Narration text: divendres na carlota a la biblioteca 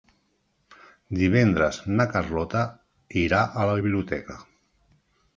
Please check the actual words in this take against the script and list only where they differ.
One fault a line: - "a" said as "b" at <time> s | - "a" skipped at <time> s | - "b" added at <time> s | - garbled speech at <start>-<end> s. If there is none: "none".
- "irà" added at 3.2 s